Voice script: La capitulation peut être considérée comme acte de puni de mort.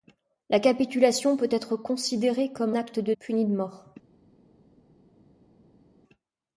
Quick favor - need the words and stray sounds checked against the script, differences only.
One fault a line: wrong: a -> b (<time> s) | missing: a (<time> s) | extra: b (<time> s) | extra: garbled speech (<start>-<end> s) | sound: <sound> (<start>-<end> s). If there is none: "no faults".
no faults